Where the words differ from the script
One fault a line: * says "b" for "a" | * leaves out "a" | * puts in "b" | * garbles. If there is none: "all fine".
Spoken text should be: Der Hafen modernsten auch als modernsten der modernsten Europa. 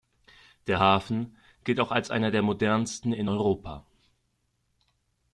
* says "gilt" for "modernsten"
* says "einer" for "modernsten"
* puts in "in"